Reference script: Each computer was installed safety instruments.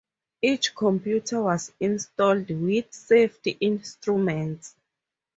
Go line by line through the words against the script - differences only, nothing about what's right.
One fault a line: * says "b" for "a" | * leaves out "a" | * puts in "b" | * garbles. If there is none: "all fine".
* puts in "with"